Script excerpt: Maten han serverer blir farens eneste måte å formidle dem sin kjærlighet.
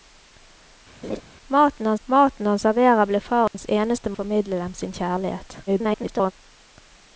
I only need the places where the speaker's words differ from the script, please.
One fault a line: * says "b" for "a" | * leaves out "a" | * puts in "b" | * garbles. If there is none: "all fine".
* puts in "maten han"
* leaves out "måte"
* garbles